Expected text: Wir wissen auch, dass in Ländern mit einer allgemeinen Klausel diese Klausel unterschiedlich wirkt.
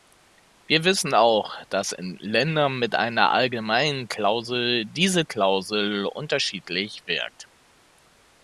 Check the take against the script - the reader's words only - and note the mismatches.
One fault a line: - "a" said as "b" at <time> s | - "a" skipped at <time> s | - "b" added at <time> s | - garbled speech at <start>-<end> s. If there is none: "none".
none